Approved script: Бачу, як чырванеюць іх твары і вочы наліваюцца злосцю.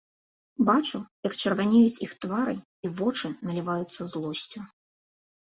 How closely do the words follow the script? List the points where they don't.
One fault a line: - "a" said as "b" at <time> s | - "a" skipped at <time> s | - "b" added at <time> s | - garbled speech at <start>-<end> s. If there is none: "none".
none